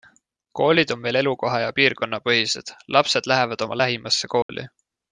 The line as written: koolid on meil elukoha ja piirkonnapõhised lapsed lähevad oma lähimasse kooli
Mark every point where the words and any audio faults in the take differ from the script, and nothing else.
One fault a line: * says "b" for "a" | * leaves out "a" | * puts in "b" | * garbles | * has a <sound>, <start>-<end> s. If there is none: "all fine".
* has a dropout, 4.4-4.5 s